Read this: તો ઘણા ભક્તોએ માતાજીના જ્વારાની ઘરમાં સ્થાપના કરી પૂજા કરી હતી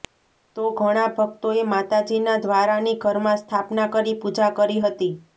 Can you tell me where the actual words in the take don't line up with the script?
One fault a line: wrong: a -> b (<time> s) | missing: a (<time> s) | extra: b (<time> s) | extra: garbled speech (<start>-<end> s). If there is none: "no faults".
no faults